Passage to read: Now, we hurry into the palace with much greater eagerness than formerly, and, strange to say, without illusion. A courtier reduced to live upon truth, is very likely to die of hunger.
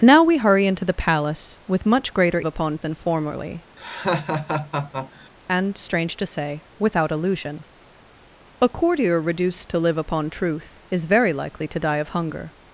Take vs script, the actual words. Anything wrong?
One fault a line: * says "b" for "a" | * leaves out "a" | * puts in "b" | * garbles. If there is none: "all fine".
* says "upon" for "eagerness"